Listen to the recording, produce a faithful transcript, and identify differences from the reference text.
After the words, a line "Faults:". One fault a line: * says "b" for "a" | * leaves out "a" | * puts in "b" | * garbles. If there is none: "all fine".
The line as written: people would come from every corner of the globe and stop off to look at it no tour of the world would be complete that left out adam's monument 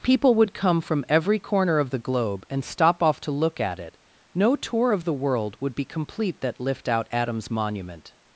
people would come from every corner of the globe and stop off to look at it no tour of the world would be complete that lift out adam's monument
Faults:
* says "lift" for "left"